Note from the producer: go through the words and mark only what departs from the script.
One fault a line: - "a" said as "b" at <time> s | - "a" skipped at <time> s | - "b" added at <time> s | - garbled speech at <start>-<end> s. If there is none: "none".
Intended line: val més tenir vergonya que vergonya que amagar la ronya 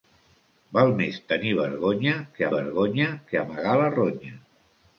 none